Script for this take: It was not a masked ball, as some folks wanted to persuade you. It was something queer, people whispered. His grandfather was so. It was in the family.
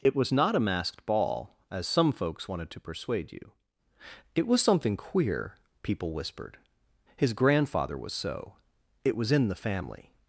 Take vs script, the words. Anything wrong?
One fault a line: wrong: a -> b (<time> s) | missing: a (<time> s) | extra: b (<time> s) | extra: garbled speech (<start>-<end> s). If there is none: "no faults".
no faults